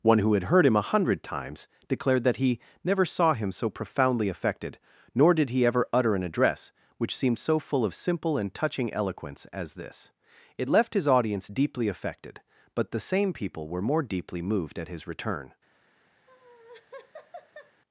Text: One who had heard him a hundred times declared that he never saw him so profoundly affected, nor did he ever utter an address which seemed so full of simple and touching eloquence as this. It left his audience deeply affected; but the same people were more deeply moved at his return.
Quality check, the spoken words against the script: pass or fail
pass